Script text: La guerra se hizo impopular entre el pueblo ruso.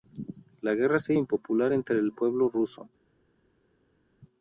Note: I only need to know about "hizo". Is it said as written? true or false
false